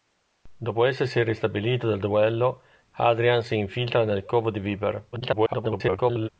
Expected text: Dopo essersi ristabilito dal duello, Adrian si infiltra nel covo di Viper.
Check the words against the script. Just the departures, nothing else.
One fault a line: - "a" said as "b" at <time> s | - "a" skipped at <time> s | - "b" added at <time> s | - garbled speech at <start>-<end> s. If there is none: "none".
- garbled speech at 5.1-6.3 s